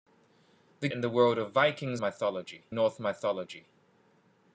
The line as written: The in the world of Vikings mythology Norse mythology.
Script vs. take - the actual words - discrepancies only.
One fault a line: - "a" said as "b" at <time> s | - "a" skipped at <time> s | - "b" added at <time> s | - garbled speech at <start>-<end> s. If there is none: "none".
none